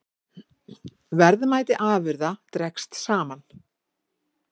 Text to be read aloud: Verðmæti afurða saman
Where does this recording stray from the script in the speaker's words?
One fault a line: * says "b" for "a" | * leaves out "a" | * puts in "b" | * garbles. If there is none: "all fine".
* puts in "dregst"